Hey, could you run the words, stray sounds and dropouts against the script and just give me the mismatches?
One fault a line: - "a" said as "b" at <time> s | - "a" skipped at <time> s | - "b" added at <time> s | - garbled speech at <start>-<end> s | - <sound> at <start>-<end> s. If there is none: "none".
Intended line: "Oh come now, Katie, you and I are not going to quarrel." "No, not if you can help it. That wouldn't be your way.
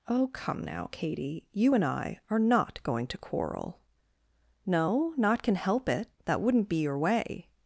- "if you" skipped at 5.4 s